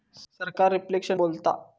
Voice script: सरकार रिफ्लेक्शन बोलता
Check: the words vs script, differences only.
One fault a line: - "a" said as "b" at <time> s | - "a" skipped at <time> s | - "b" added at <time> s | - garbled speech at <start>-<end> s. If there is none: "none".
none